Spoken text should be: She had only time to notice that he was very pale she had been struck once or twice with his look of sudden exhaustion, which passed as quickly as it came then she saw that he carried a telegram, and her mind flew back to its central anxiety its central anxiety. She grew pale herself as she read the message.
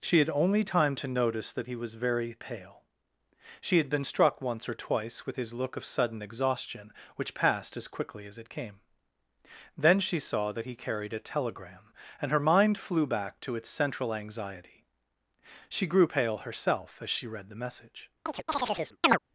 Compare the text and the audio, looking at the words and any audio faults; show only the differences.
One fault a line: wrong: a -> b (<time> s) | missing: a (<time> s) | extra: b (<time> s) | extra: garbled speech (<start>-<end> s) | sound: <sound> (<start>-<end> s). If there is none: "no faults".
missing: its central anxiety (14.9 s)
sound: chirp (18.3-19.2 s)